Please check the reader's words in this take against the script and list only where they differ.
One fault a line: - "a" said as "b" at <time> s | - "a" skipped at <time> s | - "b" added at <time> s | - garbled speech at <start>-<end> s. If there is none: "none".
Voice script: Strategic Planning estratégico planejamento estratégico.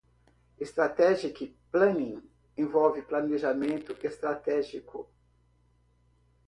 - "estratégico" said as "envolve" at 2.6 s